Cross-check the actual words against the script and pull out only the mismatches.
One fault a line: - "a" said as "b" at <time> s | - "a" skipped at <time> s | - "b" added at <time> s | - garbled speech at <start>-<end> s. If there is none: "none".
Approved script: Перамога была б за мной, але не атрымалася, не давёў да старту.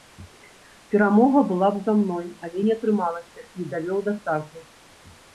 none